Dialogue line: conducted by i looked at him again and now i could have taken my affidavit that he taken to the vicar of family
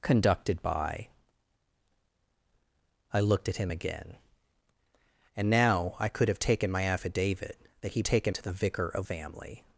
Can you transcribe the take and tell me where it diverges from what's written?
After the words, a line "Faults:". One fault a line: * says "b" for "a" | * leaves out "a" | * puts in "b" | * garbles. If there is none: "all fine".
conducted by i looked at him again and now i could have taken my affidavit that he taken to the vicar of family
Faults:
all fine